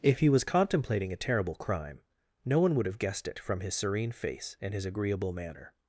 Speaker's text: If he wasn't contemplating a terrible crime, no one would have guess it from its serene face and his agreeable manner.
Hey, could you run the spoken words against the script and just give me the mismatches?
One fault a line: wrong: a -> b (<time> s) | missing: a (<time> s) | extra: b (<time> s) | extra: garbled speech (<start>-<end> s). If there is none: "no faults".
wrong: wasn't -> was (0.3 s)
wrong: guess -> guessed (3.0 s)
wrong: its -> his (3.6 s)